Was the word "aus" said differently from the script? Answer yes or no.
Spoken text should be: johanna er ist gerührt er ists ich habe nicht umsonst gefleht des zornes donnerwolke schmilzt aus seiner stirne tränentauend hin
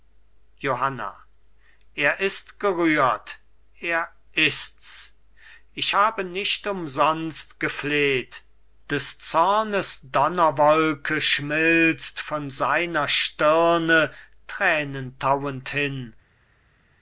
yes